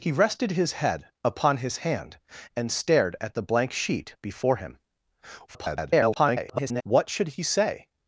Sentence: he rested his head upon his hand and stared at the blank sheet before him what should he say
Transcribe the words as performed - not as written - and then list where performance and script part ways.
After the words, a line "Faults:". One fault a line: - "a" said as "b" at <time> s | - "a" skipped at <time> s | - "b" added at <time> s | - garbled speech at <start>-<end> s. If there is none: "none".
he rested his head upon his hand and stared at the blank sheet before him [garbled] what should he say
Faults:
- garbled speech at 5.5-6.8 s